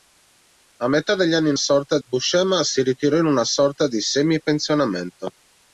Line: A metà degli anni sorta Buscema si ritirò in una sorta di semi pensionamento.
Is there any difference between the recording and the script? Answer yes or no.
no